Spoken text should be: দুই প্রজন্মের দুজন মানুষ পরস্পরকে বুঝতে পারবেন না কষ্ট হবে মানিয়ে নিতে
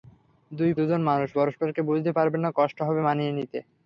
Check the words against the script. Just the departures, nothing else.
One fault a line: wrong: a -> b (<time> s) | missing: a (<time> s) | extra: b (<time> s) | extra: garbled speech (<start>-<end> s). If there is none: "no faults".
missing: প্রজন্মের (0.7 s)